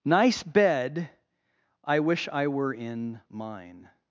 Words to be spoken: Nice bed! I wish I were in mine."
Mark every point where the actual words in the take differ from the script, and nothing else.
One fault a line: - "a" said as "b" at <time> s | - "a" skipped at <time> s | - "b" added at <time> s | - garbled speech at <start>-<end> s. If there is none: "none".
none